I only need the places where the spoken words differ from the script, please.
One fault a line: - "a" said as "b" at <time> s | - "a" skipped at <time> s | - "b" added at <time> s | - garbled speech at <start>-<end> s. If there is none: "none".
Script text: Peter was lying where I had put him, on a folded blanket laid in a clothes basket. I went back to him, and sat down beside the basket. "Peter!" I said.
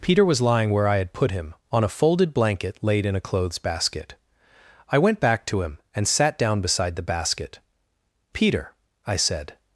none